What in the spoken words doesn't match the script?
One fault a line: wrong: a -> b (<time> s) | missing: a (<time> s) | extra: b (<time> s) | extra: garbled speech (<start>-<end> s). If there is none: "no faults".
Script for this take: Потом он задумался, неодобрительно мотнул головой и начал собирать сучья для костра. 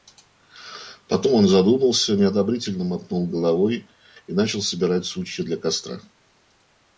no faults